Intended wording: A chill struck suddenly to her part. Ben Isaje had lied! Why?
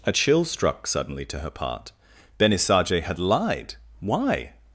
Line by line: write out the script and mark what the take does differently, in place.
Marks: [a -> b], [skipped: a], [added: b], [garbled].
A chill struck suddenly to her part. Ben Isaje had lied! Why?